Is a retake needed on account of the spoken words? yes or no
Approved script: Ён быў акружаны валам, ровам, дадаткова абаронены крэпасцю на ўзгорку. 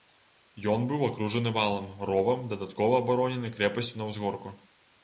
no